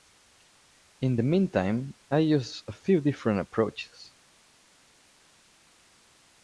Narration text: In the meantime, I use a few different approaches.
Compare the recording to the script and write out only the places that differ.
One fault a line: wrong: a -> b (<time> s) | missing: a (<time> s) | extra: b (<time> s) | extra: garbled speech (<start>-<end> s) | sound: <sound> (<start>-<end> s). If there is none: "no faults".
no faults